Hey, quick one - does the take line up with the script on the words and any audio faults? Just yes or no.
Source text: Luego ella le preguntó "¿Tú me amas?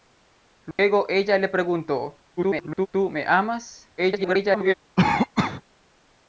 no